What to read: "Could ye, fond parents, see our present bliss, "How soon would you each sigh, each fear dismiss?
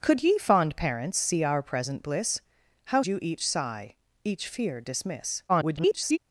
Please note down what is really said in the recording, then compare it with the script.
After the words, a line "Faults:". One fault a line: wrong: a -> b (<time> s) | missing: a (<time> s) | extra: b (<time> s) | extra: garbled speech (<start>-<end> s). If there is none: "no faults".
"Could ye, fond parents, see our present bliss, "How you each sigh, each fear dismiss? [garbled]
Faults:
missing: soon would (3.0 s)
extra: garbled speech (5.5-6.2 s)